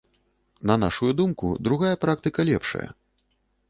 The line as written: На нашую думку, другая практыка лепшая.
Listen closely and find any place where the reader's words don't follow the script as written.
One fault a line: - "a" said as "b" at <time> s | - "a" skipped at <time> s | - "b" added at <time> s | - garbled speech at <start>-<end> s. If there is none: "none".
none